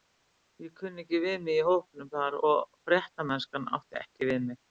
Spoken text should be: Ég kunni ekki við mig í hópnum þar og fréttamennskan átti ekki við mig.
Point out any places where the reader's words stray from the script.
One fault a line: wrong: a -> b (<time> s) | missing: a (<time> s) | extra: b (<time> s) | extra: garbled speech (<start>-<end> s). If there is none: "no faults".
no faults